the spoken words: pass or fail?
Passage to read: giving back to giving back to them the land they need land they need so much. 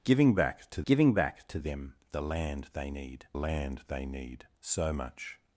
pass